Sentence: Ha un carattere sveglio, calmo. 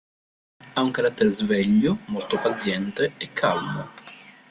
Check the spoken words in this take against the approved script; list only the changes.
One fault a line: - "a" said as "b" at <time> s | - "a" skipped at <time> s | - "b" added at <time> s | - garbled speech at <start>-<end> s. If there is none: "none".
- "molto paziente e" added at 2.1 s